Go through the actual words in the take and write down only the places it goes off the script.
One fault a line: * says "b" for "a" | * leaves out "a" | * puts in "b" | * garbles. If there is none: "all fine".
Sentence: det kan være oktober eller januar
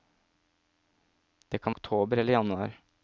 * leaves out "være"